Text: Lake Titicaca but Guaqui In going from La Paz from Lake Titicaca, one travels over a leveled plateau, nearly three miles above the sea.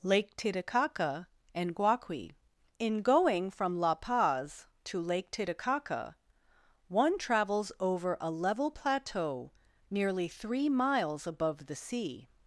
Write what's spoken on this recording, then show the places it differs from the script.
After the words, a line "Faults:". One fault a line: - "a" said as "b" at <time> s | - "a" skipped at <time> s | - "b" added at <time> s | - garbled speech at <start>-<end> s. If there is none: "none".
Lake Titicaca and Guaqui In going from La Paz to Lake Titicaca, one travels over a level plateau, nearly three miles above the sea.
Faults:
- "but" said as "and" at 1.5 s
- "from" said as "to" at 4.8 s
- "leveled" said as "level" at 8.3 s